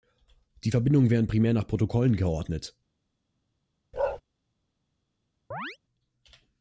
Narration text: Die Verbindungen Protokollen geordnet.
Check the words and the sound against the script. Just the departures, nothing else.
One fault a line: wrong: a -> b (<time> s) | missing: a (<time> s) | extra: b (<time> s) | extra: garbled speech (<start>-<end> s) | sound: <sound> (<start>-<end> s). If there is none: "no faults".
extra: werden primär nach (1.1 s)
sound: bark (3.9-4.2 s)
sound: chirp (5.5-5.8 s)